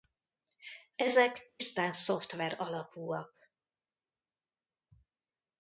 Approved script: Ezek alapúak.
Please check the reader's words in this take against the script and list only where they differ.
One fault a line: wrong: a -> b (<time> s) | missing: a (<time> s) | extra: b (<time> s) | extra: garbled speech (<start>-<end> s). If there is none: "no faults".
extra: tisztán szoftver (1.6 s)